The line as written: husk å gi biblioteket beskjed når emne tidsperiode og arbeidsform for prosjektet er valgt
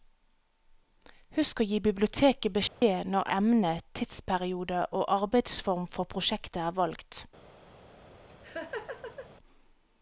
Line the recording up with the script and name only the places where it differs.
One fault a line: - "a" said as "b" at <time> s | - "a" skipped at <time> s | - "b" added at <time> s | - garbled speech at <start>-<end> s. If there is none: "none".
none